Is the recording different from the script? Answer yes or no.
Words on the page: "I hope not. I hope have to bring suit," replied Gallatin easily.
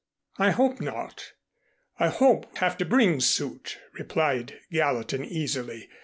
no